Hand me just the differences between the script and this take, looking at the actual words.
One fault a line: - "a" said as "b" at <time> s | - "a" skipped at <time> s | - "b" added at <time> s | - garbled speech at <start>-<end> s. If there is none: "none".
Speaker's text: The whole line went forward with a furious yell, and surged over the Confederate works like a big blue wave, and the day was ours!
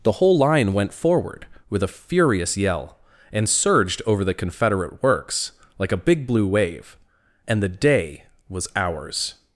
none